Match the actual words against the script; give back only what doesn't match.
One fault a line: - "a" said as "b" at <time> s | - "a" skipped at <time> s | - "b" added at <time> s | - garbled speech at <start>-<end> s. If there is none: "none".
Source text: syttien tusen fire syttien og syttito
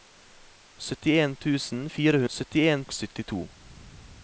none